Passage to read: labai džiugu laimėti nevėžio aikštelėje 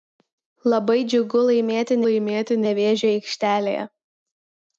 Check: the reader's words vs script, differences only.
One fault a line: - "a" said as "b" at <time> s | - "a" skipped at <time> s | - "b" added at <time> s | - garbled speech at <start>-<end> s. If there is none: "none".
- "laimėti" added at 2.1 s